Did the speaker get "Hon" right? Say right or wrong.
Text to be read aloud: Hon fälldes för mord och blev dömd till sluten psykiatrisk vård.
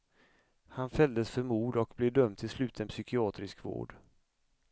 wrong